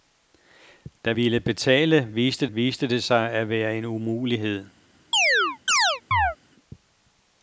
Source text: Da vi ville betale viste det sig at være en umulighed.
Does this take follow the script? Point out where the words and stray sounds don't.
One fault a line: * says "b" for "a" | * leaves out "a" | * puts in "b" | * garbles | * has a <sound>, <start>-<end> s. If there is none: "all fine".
* leaves out "vi"
* puts in "viste"
* has a chirp, 5.1-6.4 s